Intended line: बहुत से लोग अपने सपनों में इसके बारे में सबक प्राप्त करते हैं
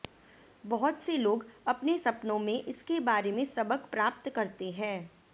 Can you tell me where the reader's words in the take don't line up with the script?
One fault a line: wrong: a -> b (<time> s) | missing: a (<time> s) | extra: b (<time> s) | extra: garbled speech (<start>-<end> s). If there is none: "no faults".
no faults